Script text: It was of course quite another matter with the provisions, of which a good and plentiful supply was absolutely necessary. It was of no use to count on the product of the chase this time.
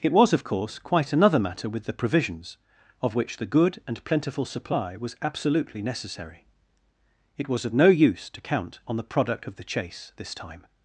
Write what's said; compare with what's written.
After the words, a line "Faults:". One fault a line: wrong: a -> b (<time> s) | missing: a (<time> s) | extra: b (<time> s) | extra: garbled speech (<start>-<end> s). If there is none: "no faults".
It was of course quite another matter with the provisions, of which the good and plentiful supply was absolutely necessary. It was of no use to count on the product of the chase this time.
Faults:
wrong: a -> the (3.4 s)